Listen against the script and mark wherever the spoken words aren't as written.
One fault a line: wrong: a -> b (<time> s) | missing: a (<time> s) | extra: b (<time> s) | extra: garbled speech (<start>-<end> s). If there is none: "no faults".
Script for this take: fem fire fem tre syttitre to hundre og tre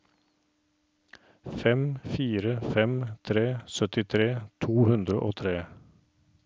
no faults